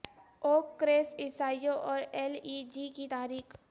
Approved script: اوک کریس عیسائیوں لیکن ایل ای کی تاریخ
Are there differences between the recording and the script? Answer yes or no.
yes